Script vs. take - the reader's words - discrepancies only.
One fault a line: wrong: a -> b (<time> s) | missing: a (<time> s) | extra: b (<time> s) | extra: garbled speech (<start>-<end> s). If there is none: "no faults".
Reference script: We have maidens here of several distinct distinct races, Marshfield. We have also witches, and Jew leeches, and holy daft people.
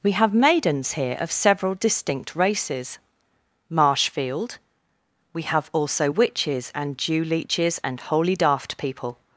missing: distinct (2.4 s)